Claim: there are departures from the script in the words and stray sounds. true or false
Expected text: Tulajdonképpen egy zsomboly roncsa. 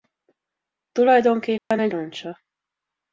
true